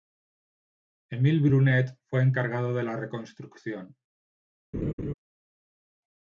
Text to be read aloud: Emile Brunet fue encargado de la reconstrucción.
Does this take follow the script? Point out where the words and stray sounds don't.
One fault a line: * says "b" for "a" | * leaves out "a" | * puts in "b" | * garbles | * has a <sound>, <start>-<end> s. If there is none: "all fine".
* has a laugh, 4.7-5.1 s